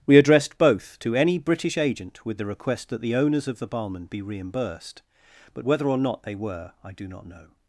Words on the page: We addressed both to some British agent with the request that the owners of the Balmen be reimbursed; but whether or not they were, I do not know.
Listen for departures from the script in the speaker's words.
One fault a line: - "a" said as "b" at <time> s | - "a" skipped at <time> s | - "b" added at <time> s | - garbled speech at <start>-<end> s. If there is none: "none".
- "some" said as "any" at 1.1 s